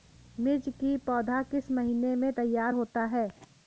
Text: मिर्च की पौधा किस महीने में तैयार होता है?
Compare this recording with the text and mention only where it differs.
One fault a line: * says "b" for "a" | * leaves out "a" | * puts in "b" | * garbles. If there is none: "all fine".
all fine